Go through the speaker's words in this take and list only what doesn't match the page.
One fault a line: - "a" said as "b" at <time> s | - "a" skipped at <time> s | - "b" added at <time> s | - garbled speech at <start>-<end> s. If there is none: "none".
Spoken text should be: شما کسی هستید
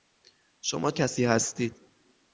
none